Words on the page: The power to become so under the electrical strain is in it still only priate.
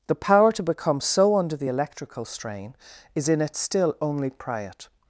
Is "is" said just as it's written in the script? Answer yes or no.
yes